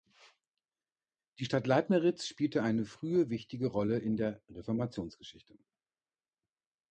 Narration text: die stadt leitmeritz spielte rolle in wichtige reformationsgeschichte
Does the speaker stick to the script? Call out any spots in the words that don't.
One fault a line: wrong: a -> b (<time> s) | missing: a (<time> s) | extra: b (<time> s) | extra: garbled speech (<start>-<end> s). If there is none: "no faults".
extra: eine frühe wichtige (2.6 s)
wrong: wichtige -> der (4.1 s)